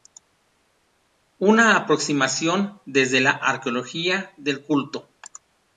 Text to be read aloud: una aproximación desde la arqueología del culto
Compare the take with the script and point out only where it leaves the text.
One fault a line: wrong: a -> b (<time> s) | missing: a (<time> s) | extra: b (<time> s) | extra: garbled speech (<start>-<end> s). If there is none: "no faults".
no faults